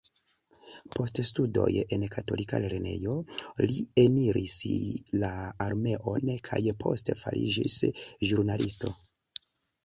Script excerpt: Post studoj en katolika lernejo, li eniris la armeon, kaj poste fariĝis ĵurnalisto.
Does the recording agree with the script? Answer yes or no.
yes